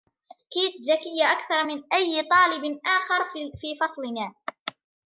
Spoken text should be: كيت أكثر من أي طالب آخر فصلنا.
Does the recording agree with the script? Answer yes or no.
no